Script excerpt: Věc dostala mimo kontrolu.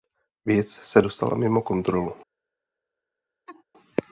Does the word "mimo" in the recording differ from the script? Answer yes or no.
no